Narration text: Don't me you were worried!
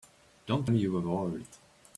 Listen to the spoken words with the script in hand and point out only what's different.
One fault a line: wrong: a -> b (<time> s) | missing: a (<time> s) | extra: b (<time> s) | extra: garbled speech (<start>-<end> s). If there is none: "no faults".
no faults